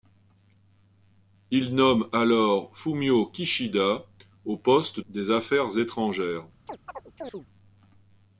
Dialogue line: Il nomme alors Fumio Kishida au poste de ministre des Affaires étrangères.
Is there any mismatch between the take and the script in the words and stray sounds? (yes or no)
yes